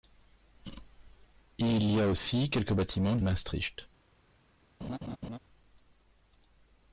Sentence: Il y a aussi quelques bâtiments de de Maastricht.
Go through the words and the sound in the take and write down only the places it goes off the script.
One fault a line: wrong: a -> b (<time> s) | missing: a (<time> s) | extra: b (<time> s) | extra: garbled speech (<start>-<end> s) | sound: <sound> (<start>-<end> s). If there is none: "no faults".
sound: laugh (4.8-5.4 s)